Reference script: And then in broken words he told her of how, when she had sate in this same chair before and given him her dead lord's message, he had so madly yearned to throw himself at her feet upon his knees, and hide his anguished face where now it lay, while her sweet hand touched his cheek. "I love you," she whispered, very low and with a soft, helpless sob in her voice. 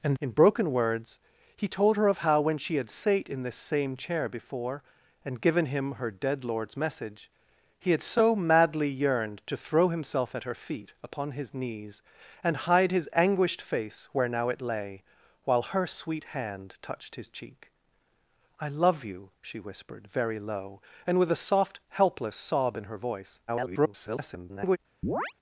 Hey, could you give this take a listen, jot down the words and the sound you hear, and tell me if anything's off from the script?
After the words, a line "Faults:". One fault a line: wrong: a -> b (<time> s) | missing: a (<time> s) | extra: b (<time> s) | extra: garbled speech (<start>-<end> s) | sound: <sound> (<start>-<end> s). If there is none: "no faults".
And in broken words he told her of how, when she had sate in this same chair before and given him her dead lord's message, he had so madly yearned to throw himself at her feet upon his knees, and hide his anguished face where now it lay, while her sweet hand touched his cheek. "I love you," she whispered, very low and with a soft, helpless sob in her voice. [garbled]
Faults:
missing: then (0.2 s)
extra: garbled speech (23.5-24.8 s)
sound: chirp (25.0-25.3 s)